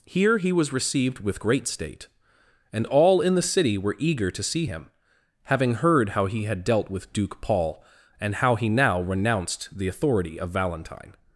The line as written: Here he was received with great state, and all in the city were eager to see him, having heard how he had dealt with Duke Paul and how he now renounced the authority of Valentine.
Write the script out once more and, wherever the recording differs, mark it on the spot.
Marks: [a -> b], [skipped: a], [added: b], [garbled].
Here he was received with great state, and all in the city were eager to see him, having heard how he had dealt with Duke Paul and how he now renounced the authority of Valentine.